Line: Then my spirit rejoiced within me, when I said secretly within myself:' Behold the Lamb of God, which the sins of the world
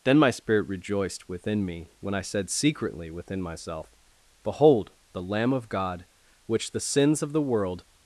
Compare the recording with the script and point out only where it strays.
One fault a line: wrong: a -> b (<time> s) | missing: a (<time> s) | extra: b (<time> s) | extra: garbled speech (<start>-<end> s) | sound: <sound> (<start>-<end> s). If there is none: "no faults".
no faults